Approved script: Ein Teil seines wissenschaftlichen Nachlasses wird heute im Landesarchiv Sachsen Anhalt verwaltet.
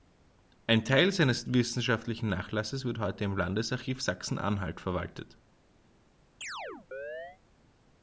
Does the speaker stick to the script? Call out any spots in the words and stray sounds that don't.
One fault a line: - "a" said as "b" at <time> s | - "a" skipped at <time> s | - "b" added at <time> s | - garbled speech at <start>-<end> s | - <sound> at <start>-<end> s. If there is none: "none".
- chirp at 6.4-7.4 s